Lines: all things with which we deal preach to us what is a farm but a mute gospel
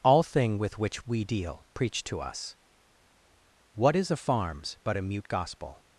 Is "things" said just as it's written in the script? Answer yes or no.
no